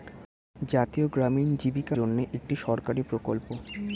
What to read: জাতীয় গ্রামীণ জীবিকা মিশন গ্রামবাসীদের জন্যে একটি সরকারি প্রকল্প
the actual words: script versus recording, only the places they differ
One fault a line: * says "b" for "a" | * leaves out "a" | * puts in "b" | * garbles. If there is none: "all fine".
* leaves out "মিশন গ্রামবাসীদের"